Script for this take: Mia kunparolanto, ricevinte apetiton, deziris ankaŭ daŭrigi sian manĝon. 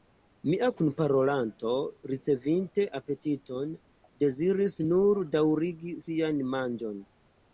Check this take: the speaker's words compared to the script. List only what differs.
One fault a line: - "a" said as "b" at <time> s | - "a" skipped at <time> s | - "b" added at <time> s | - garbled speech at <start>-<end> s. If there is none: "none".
- "ankaŭ" said as "nur" at 4.9 s